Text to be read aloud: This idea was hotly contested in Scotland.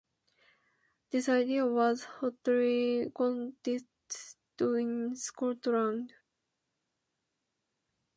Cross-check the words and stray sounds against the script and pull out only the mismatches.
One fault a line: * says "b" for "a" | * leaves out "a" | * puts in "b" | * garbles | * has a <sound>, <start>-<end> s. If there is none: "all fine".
all fine